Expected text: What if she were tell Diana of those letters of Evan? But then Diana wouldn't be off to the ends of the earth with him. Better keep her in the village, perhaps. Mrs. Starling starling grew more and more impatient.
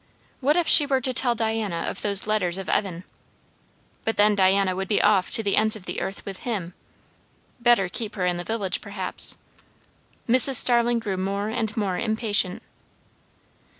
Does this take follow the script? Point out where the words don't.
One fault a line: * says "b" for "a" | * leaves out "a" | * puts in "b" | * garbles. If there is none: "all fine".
* puts in "to"
* says "would" for "wouldn't"
* leaves out "starling"